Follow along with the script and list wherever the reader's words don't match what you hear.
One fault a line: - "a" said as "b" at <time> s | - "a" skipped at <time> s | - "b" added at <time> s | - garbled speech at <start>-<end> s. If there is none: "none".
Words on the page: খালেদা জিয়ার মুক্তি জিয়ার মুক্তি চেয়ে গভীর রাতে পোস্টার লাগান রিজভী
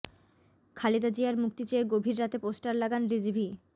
- "জিয়ার মুক্তি" skipped at 1.6 s